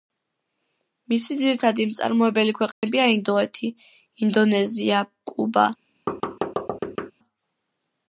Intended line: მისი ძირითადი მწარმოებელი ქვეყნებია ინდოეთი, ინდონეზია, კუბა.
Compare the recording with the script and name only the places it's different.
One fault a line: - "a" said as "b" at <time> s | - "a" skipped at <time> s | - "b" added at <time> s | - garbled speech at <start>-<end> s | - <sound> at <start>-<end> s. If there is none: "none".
- dropout at 2.7-2.8 s
- thud at 6.1-7.1 s